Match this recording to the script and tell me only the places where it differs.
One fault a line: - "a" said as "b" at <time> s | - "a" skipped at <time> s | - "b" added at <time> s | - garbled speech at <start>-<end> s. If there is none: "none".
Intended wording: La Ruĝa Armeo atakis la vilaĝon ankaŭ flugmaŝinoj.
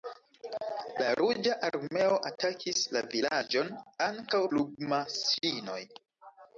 none